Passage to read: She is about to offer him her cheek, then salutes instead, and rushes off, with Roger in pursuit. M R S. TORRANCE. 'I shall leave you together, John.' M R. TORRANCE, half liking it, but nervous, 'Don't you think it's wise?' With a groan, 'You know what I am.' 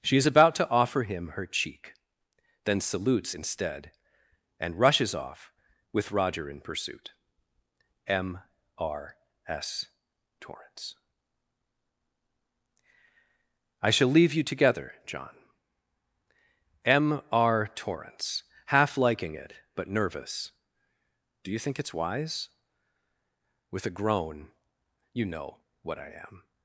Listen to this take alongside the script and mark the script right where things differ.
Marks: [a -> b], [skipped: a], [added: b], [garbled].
She is about to offer him her cheek, then salutes instead, and rushes off, with Roger in pursuit. M R S. TORRANCE. 'I shall leave you together, John.' M R. TORRANCE, half liking it, but nervous, ['Don't -> Do] you think it's wise?' With a groan, 'You know what I am.'